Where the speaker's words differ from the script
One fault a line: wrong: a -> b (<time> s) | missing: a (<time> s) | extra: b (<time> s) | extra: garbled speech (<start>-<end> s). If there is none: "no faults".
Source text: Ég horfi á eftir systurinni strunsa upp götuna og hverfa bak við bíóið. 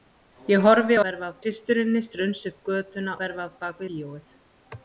wrong: eftir -> hverfa (1.0 s)
missing: og (3.2 s)
missing: við (3.8 s)